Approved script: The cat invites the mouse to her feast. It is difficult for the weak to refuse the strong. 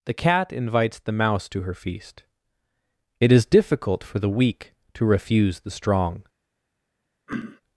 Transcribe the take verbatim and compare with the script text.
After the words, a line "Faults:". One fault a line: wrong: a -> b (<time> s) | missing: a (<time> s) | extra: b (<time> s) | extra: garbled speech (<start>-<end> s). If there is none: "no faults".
The cat invites the mouse to her feast. It is difficult for the weak to refuse the strong.
Faults:
no faults